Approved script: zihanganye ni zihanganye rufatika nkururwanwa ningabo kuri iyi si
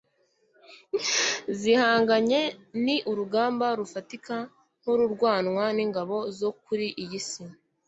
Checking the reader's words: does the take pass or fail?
fail